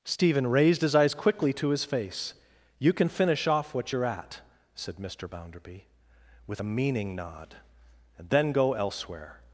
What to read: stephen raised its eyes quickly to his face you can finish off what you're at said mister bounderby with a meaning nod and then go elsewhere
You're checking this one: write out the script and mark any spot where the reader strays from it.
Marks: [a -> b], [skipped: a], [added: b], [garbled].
stephen raised [its -> his] eyes quickly to his face you can finish off what you're at said mister bounderby with a meaning nod and then go elsewhere